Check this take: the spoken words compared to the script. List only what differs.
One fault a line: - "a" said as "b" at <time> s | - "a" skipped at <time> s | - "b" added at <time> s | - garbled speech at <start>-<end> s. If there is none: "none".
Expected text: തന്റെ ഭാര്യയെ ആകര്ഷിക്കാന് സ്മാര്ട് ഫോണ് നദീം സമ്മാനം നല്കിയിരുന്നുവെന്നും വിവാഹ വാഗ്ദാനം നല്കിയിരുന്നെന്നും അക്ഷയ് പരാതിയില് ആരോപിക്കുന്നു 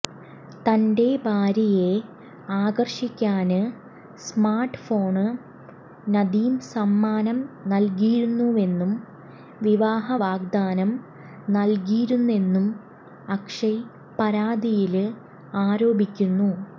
none